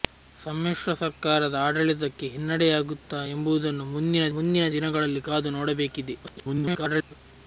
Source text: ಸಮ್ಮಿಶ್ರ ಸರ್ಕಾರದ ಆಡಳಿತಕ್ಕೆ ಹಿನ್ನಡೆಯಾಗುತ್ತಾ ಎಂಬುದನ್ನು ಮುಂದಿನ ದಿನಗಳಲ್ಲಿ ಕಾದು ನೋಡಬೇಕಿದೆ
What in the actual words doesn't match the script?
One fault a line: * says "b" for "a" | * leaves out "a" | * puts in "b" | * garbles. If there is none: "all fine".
* puts in "ಮುಂದಿನ"
* garbles